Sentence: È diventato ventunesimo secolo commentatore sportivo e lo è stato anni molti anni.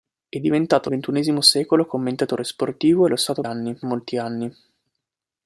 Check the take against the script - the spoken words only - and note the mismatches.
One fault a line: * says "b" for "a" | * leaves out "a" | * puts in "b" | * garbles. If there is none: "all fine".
all fine